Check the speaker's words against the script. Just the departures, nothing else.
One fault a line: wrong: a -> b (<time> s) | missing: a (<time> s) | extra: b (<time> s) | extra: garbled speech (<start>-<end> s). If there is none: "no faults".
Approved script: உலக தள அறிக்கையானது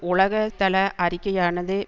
no faults